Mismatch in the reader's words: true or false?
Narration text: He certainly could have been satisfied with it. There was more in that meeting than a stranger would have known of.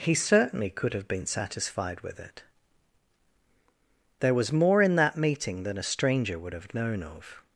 false